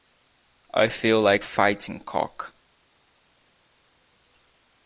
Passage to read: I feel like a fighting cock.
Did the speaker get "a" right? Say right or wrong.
wrong